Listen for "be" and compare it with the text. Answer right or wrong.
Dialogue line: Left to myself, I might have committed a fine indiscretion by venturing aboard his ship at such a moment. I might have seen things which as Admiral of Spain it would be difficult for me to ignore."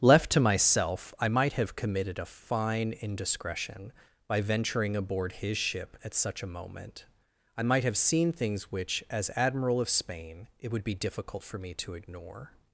right